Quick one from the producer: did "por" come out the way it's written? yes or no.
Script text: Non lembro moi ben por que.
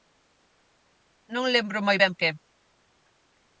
no